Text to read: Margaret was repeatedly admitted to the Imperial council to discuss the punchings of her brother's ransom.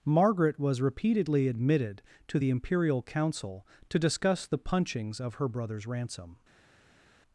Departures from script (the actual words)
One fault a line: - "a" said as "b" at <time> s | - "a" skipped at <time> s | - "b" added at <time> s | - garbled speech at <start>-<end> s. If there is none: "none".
none